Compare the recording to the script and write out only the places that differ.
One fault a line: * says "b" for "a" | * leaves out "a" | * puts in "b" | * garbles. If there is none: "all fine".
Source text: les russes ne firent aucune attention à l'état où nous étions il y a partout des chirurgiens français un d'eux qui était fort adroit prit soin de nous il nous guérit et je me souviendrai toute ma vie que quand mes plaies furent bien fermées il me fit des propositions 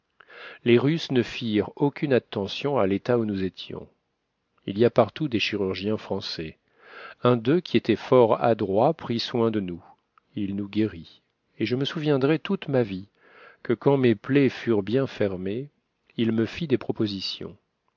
all fine